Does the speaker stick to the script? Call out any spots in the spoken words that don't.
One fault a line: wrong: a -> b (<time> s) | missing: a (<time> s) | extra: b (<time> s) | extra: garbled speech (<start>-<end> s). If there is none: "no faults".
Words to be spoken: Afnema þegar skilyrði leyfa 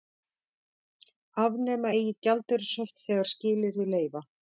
extra: eigi gjaldeyrishöft (2.0 s)